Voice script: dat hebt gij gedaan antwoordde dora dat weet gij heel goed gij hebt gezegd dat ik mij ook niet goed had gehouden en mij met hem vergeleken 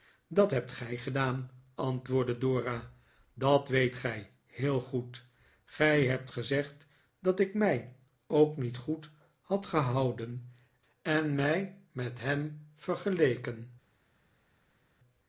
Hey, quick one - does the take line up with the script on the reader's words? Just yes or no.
yes